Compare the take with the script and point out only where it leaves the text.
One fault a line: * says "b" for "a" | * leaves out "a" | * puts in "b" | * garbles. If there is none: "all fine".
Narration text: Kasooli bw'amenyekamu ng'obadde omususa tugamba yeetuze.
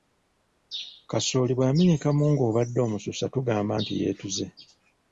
* puts in "nti"